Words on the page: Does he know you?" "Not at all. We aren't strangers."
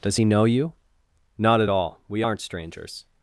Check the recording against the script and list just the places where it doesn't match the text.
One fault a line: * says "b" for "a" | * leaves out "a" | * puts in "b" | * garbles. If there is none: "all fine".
all fine